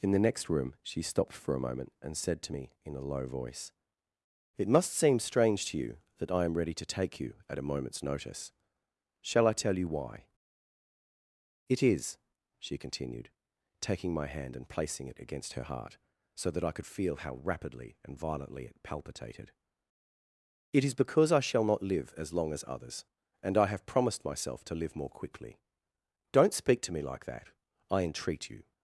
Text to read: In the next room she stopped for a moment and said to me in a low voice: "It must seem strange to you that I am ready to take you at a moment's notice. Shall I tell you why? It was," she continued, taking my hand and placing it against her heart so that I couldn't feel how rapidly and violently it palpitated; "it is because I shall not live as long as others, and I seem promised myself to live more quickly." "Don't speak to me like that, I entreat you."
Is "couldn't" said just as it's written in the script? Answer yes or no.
no